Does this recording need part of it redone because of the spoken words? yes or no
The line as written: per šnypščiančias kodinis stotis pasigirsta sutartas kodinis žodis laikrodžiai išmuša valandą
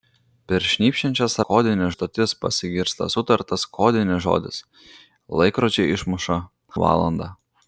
no